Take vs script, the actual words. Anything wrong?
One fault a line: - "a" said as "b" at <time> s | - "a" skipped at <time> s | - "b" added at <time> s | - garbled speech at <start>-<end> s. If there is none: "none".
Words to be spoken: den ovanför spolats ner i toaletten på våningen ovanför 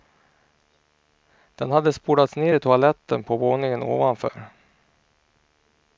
- "ovanför" said as "hade" at 1.7 s